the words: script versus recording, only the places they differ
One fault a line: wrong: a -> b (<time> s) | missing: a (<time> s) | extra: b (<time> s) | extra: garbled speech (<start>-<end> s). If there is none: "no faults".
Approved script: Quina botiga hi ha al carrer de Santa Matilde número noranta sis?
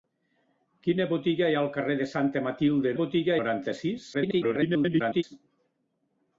wrong: número -> botiga (3.0 s)
extra: garbled speech (4.1-5.2 s)